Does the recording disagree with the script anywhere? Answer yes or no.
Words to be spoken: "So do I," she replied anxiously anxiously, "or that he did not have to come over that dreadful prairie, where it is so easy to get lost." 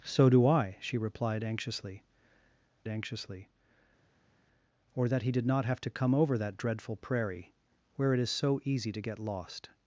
no